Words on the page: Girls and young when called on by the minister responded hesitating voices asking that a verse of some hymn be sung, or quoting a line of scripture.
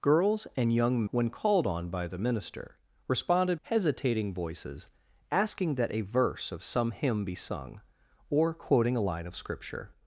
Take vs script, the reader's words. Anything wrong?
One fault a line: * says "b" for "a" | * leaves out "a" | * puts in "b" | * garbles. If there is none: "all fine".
all fine